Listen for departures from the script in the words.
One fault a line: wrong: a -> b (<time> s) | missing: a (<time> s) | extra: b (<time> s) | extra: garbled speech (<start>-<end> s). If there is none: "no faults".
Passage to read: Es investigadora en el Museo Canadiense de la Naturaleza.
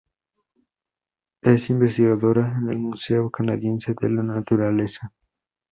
no faults